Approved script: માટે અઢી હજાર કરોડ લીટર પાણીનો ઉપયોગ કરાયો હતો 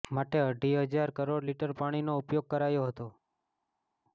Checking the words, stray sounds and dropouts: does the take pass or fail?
pass